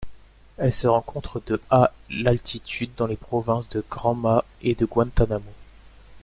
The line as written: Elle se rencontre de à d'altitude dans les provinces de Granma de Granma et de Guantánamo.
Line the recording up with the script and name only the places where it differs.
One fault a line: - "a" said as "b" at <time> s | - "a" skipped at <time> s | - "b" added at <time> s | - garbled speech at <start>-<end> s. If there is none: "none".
- "de Granma" skipped at 4.4 s